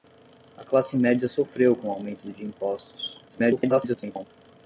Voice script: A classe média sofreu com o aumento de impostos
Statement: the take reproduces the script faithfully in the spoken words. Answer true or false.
false